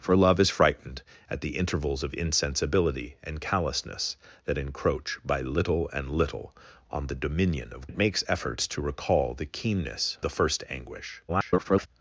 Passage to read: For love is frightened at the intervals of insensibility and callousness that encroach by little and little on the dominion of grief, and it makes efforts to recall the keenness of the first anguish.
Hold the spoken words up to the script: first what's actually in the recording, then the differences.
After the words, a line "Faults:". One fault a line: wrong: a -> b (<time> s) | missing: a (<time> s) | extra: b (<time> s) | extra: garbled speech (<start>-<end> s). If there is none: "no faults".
For love is frightened at the intervals of insensibility and callousness that encroach by little and little on the dominion of it makes efforts to recall the keenness the first anguish. [garbled]
Faults:
missing: grief and (7.9 s)
missing: of (10.2 s)
extra: garbled speech (11.3-11.9 s)